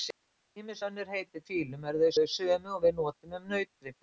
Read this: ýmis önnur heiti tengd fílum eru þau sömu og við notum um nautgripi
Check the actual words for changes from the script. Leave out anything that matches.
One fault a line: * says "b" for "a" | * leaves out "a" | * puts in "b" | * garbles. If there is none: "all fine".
* leaves out "tengd"
* puts in "þau"